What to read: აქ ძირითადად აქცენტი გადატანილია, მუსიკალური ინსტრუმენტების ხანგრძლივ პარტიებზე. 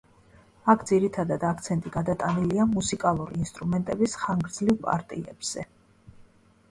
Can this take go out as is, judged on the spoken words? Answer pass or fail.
pass